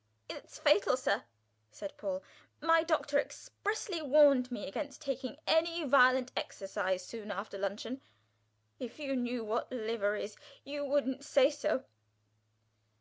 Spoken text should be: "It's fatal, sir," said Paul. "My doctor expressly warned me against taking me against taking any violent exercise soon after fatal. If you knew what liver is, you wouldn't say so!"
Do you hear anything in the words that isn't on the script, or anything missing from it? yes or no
yes